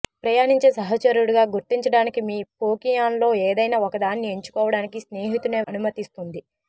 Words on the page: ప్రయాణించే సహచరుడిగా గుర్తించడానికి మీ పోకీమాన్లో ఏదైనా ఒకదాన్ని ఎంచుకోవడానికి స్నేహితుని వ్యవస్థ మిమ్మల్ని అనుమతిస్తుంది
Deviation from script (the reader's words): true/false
true